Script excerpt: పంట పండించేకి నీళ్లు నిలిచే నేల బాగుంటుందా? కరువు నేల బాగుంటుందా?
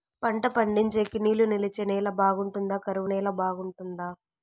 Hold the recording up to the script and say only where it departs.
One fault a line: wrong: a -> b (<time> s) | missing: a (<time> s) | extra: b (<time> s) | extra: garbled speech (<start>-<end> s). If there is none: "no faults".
no faults